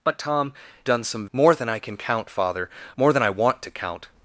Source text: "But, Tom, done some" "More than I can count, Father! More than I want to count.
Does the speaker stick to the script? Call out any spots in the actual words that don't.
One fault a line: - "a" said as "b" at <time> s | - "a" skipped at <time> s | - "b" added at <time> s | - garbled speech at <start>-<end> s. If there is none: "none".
none